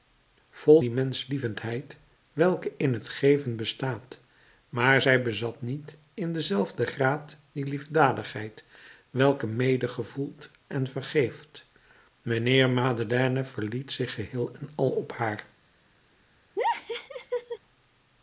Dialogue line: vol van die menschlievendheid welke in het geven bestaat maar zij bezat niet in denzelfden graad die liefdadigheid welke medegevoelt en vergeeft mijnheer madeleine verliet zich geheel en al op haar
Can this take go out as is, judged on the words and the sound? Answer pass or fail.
fail